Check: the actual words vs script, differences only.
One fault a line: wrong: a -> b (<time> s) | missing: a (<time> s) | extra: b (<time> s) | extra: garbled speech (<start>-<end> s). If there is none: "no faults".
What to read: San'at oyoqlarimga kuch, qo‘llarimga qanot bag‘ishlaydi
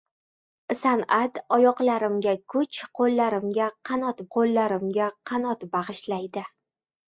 extra: qo‘llarimga qanot (4.4 s)